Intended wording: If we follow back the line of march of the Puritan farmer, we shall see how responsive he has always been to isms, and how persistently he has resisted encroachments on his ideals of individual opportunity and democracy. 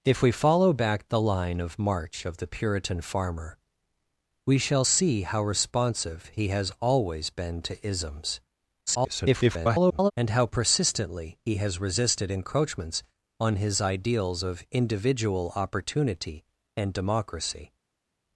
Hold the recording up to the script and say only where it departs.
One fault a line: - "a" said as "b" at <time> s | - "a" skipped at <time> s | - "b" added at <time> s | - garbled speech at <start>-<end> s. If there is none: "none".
- garbled speech at 8.9-10.1 s